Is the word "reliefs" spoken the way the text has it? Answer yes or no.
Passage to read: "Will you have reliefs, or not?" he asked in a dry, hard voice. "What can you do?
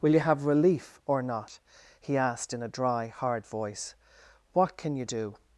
no